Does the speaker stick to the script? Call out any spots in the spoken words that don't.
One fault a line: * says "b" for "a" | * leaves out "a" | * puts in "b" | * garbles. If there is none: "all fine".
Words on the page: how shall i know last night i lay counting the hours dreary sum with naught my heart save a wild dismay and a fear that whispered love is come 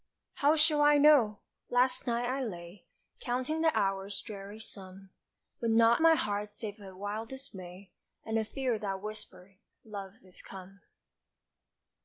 all fine